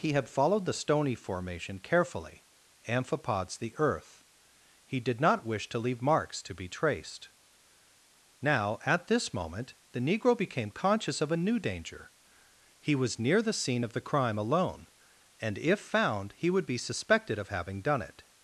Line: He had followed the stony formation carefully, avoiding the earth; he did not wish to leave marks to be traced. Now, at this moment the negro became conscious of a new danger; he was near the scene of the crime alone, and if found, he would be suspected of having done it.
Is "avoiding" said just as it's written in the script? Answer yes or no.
no